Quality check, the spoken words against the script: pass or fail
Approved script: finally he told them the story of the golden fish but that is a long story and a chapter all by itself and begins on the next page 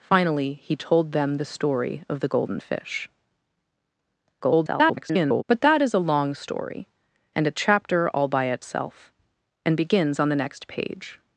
fail